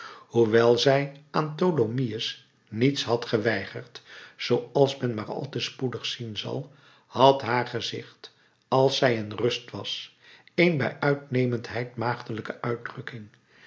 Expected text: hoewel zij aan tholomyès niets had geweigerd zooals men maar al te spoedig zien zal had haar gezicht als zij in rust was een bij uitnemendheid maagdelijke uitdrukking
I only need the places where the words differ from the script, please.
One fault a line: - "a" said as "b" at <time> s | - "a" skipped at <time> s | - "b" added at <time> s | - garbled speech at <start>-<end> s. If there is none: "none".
none